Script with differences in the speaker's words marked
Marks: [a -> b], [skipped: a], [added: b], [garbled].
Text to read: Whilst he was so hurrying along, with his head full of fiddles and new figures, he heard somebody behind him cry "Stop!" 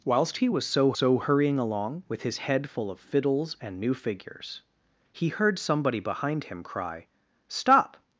Whilst he was so [added: so] hurrying along, with his head full of fiddles and new figures, he heard somebody behind him cry "Stop!"